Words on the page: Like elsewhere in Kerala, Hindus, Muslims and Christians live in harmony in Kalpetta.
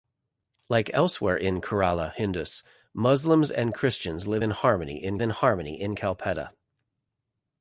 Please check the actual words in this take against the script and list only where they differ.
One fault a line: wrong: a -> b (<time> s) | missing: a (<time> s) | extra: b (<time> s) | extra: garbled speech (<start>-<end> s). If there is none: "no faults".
extra: in harmony in (5.2 s)